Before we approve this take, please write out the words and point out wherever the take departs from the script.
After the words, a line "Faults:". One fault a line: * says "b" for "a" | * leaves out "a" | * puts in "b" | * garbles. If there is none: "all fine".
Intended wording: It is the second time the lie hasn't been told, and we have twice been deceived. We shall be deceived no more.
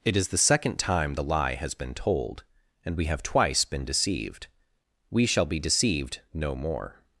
It is the second time the lie has been told, and we have twice been deceived. We shall be deceived no more.
Faults:
* says "has" for "hasn't"